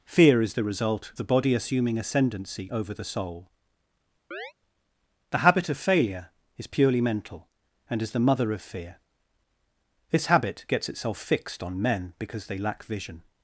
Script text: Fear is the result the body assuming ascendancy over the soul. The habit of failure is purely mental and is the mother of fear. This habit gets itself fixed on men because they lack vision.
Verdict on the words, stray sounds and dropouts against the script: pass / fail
fail